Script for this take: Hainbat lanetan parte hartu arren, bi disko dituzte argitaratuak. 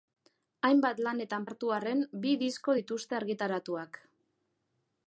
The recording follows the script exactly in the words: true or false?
false